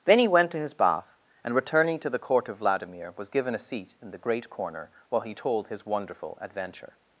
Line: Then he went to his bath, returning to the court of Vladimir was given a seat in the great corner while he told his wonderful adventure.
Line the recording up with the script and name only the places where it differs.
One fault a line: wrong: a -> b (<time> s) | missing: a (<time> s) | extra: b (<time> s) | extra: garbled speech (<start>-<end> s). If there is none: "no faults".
extra: and (1.4 s)